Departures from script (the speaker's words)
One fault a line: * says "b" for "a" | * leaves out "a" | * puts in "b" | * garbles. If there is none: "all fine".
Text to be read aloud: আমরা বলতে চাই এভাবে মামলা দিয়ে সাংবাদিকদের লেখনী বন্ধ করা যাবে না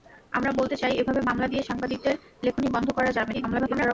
* garbles